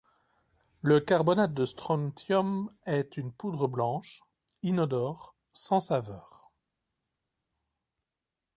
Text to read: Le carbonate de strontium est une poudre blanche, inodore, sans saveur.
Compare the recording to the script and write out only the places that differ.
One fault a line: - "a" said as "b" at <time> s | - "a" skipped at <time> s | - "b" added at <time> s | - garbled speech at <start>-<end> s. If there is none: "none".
none